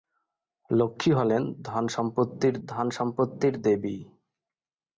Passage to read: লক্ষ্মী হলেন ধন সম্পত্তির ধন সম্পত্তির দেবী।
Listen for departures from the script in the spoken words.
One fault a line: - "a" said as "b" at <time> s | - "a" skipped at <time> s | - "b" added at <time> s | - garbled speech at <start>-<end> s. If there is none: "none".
none